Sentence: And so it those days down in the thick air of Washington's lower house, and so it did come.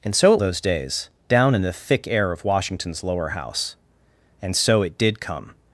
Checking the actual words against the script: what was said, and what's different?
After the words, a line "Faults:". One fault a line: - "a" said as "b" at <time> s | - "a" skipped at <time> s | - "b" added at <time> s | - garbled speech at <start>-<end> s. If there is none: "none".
And so it those days down in the thick air of Washington's lower house, and so it did come.
Faults:
none